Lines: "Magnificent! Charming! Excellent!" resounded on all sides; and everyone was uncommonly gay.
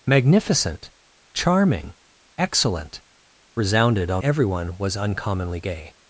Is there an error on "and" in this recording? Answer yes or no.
yes